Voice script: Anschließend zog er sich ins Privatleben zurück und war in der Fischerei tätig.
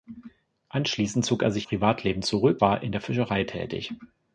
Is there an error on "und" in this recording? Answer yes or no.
yes